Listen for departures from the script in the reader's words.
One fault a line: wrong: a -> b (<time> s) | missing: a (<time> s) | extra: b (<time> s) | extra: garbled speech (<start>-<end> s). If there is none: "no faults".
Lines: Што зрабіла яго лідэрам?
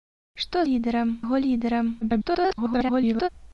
wrong: зрабіла -> лідэрам (0.7 s)
extra: garbled speech (2.0-3.3 s)